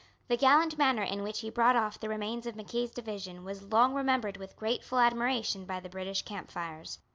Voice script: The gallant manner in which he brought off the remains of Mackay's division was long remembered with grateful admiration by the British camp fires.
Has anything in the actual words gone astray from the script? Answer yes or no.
no